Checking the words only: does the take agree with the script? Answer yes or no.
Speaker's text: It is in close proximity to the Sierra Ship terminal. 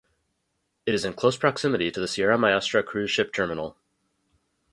no